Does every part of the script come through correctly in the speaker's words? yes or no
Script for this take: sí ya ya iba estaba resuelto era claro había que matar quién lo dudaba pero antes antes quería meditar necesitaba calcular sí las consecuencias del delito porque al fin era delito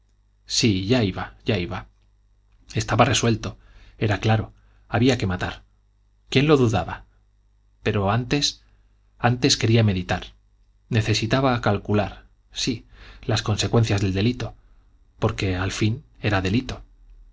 no